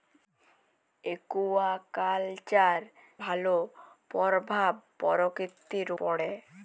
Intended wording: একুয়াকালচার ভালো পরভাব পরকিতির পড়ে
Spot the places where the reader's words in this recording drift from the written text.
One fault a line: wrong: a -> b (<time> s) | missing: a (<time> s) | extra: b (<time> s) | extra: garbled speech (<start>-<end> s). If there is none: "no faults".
no faults